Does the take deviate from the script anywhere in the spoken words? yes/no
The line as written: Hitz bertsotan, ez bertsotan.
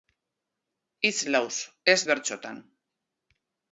yes